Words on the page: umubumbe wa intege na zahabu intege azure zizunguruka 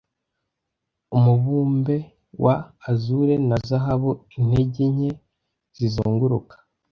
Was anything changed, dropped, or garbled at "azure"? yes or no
yes